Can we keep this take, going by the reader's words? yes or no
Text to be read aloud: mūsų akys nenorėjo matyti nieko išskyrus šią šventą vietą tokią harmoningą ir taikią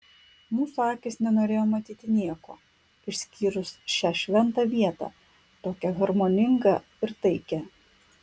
yes